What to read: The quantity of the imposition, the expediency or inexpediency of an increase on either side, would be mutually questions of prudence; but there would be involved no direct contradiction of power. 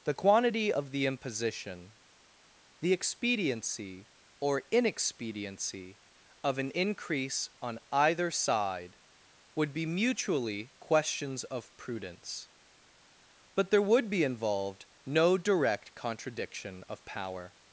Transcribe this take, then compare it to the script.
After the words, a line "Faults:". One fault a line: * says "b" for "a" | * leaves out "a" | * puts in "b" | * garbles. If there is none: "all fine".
The quantity of the imposition, the expediency or inexpediency of an increase on either side, would be mutually questions of prudence; but there would be involved no direct contradiction of power.
Faults:
all fine